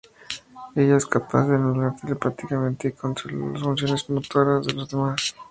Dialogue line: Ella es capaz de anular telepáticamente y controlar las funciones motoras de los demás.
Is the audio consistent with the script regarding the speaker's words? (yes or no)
yes